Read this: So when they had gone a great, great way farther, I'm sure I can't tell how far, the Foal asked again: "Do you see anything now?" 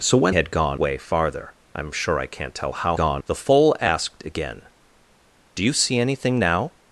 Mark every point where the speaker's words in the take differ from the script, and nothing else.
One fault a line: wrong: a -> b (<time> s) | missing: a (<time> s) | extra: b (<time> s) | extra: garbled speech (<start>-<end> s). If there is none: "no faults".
missing: they (0.3 s)
missing: a great great (0.8 s)
wrong: far -> gone (2.9 s)